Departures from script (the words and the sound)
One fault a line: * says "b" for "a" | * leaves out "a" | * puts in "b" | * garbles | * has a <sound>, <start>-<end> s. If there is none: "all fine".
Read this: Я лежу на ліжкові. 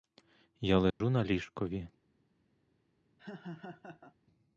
* has a dropout, 0.9-1.0 s
* has a laugh, 3.2-4.2 s